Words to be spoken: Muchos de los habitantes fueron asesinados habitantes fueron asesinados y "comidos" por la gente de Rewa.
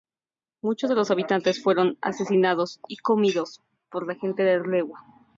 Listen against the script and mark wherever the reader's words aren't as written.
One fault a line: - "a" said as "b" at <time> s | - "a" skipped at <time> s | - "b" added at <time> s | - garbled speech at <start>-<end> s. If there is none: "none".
- "habitantes fueron asesinados" skipped at 2.8 s